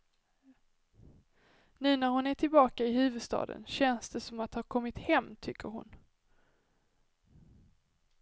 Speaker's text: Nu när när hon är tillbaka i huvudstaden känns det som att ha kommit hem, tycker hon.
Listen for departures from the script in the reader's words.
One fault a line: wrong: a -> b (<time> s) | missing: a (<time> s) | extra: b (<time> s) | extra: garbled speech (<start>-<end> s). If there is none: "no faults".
missing: när (2.1 s)